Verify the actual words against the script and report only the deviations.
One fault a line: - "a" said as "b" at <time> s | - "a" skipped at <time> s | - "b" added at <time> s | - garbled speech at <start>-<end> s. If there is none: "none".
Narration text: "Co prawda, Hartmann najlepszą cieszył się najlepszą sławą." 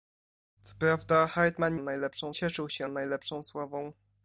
none